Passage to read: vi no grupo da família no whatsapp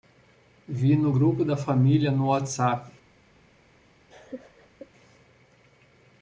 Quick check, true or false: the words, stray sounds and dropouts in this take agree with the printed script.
false